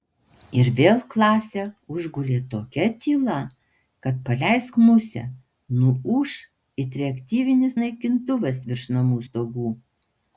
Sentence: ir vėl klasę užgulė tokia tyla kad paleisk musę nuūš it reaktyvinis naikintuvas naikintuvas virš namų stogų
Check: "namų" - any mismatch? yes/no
no